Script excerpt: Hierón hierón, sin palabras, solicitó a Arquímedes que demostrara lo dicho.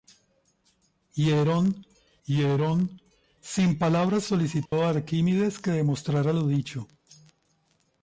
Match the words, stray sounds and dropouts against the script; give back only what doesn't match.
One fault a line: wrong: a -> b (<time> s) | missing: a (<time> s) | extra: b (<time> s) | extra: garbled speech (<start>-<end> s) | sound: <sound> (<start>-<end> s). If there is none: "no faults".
sound: dropout (4.7-4.7 s)